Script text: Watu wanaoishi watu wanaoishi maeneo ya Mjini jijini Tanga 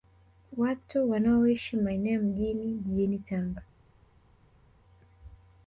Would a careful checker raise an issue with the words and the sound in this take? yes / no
yes